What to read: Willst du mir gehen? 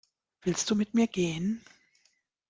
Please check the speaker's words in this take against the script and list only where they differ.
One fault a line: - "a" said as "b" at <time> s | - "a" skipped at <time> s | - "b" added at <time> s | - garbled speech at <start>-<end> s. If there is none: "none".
- "mit" added at 0.7 s